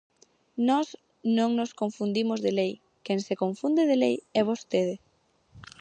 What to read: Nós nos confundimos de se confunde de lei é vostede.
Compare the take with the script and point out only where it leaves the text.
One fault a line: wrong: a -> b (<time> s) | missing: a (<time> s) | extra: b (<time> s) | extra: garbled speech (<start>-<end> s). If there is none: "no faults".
extra: non (1.4 s)
extra: lei quen (2.6 s)